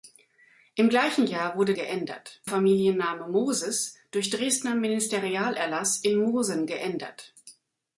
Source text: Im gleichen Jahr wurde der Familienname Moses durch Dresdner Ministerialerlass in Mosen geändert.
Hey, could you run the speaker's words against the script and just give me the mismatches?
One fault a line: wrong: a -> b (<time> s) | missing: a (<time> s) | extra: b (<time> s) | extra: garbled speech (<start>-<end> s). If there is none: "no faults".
wrong: der -> geändert (1.7 s)